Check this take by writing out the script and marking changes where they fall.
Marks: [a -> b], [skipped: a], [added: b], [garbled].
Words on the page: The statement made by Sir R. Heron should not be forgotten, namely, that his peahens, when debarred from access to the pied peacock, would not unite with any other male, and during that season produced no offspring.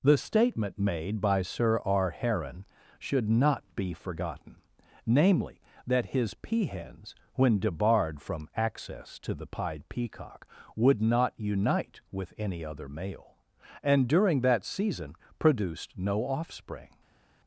The statement made by Sir R. Heron should not be forgotten, namely, that his peahens, when debarred from access to the pied peacock, would not unite with any other male, and during that season produced no offspring.